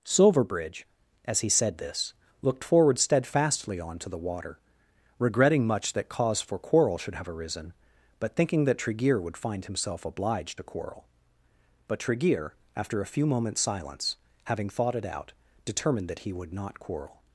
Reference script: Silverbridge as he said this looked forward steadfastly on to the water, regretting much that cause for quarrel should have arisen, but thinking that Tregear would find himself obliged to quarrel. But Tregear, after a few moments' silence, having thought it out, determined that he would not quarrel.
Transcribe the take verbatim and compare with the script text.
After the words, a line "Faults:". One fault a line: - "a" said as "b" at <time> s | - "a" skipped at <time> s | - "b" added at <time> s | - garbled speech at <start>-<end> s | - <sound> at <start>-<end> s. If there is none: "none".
Silverbridge as he said this looked forward steadfastly on to the water, regretting much that cause for quarrel should have arisen, but thinking that Tregear would find himself obliged to quarrel. But Tregear, after a few moments' silence, having thought it out, determined that he would not quarrel.
Faults:
none